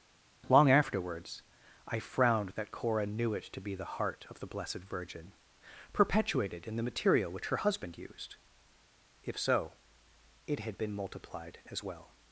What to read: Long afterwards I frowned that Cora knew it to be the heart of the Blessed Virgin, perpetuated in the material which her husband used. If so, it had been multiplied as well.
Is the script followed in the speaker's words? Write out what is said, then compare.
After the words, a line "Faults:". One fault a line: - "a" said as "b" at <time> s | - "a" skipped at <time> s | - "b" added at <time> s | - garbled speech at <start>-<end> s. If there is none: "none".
Long afterwards I frowned that Cora knew it to be the heart of the Blessed Virgin, perpetuated in the material which her husband used. If so, it had been multiplied as well.
Faults:
none